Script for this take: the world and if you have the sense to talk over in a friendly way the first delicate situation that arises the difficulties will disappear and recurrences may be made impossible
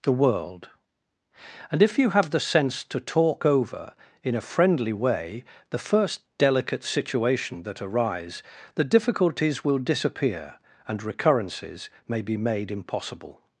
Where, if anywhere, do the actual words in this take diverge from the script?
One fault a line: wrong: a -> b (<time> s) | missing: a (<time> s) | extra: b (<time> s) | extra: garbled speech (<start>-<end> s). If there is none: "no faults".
wrong: arises -> arise (7.8 s)